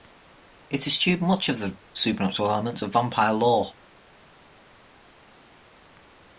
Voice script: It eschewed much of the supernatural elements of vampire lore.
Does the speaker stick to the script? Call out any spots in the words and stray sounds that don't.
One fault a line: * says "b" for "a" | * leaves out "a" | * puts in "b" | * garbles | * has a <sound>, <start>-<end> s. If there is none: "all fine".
all fine